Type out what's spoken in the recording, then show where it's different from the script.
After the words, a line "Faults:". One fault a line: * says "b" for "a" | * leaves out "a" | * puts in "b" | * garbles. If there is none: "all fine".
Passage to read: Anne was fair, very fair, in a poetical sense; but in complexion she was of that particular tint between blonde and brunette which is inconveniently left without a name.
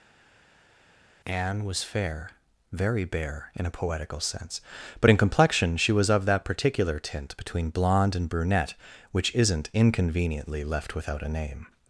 Anne was fair, very bare, in a poetical sense; but in complexion she was of that particular tint between blonde and brunette which isn't inconveniently left without a name.
Faults:
* says "bare" for "fair"
* says "isn't" for "is"